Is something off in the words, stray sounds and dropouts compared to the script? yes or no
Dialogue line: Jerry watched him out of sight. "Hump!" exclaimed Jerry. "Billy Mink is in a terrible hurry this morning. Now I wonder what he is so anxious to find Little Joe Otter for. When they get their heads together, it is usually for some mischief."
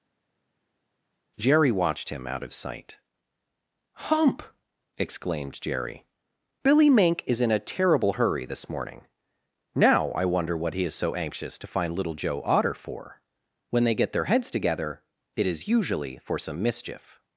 no